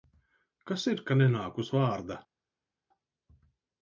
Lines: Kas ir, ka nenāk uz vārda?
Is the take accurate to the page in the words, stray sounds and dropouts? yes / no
yes